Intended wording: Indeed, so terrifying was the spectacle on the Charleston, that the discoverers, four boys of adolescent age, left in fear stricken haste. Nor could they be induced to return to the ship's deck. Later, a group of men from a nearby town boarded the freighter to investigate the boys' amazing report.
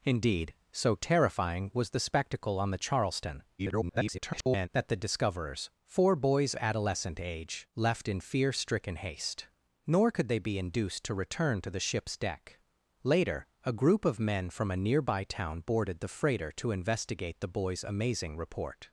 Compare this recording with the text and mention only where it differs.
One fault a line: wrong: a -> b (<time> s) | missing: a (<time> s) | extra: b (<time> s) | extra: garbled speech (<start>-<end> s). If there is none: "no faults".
extra: garbled speech (3.6-4.7 s)
missing: of (6.5 s)